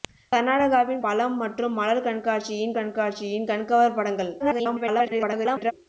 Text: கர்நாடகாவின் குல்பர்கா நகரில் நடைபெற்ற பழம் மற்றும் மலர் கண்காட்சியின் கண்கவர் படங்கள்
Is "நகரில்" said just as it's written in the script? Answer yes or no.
no